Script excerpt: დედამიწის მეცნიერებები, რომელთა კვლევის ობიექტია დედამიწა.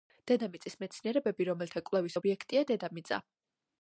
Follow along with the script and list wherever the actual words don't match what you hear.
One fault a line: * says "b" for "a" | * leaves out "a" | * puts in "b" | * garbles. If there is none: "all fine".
all fine